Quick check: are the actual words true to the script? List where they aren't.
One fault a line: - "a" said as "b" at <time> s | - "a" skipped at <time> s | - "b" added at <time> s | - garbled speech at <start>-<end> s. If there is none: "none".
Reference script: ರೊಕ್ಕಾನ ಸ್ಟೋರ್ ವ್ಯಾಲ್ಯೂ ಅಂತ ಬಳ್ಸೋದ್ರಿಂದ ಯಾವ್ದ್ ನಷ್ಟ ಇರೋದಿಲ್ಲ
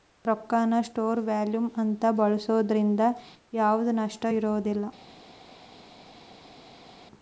none